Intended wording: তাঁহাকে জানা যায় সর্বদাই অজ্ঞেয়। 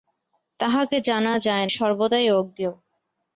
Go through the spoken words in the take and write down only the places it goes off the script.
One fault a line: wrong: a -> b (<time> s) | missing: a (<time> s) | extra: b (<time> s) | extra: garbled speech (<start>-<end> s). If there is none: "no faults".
no faults